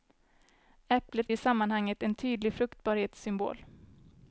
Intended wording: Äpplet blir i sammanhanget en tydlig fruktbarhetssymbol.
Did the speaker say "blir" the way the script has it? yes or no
no